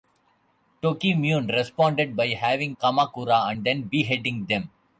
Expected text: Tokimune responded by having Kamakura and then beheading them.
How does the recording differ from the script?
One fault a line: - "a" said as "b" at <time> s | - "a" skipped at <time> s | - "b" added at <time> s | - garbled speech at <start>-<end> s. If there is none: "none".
none